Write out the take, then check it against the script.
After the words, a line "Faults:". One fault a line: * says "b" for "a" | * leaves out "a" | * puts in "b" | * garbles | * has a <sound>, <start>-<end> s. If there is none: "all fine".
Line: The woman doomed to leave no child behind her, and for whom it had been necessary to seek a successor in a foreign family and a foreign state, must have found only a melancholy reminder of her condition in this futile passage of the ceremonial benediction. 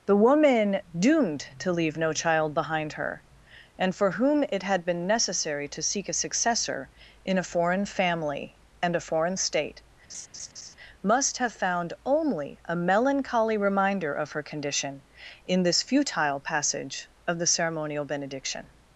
The woman doomed to leave no child behind her, and for whom it had been necessary to seek a successor in a foreign family and a foreign state, must have found only a melancholy reminder of her condition in this futile passage of the ceremonial benediction.
Faults:
* has a laugh, 10.1-10.7 s